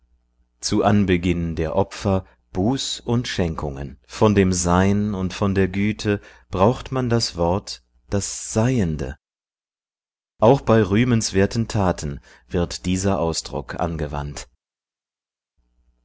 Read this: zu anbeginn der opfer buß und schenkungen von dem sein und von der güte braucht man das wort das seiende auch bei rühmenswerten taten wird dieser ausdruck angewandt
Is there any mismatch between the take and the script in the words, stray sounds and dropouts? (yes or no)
no